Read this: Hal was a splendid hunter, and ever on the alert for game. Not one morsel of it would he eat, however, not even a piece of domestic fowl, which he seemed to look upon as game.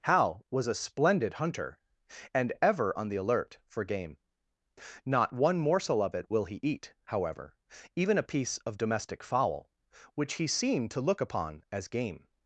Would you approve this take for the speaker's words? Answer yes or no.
no